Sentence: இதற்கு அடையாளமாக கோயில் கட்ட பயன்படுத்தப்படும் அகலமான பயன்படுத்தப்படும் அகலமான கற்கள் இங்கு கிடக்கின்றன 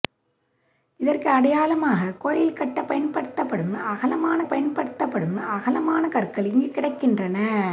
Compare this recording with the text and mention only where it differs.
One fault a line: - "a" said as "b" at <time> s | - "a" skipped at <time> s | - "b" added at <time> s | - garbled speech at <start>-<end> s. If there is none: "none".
none